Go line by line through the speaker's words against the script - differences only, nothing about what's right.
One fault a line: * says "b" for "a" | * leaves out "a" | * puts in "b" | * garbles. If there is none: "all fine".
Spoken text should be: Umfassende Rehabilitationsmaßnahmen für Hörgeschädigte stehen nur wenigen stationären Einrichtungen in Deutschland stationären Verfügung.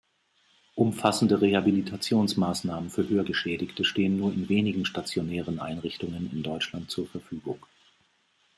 * puts in "in"
* says "zur" for "stationären"